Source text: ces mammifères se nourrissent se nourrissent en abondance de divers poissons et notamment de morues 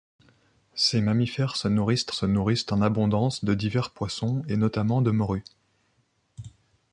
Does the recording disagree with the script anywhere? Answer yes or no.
no